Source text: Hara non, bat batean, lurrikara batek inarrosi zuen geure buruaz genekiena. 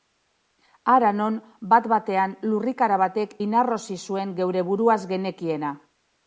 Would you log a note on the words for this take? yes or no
no